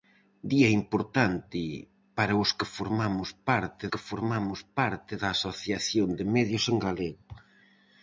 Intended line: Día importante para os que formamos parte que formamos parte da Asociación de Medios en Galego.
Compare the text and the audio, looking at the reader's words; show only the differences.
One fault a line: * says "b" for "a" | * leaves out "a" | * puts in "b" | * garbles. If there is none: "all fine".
all fine